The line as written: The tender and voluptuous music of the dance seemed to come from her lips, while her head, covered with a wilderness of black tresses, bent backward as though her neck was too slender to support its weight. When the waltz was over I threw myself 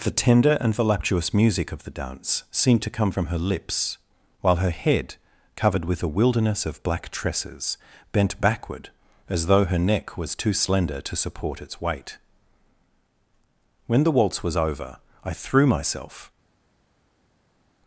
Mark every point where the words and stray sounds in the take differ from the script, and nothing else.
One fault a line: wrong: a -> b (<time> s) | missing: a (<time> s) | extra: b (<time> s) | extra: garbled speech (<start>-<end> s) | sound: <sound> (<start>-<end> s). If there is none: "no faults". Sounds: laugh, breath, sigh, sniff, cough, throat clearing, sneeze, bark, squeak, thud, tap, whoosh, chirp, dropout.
no faults